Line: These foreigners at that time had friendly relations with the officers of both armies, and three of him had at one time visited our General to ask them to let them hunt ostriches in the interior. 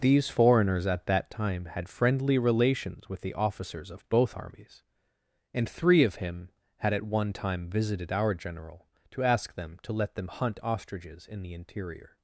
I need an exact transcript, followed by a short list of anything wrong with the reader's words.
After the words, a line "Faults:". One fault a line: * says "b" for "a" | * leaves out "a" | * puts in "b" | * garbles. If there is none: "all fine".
These foreigners at that time had friendly relations with the officers of both armies, and three of him had at one time visited our General to ask them to let them hunt ostriches in the interior.
Faults:
all fine